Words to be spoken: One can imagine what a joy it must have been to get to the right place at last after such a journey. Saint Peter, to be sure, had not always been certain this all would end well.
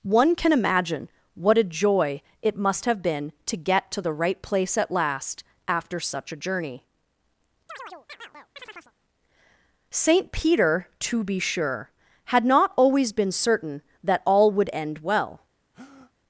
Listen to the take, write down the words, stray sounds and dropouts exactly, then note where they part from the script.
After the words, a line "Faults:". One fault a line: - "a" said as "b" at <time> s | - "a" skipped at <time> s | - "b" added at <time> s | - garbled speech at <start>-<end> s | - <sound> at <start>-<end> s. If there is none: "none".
One can imagine what a joy it must have been to get to the right place at last after such a journey. Saint Peter, to be sure, had not always been certain that all would end well.
Faults:
- chirp at 7.7-8.9 s
- "this" said as "that" at 14.0 s
- breath at 15.7-16.1 s